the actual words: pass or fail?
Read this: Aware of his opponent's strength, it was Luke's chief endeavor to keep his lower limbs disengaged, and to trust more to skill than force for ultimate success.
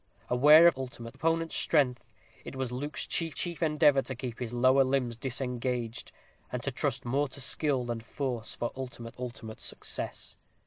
fail